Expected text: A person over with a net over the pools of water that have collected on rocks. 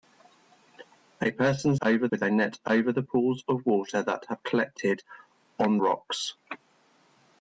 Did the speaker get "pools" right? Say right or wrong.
right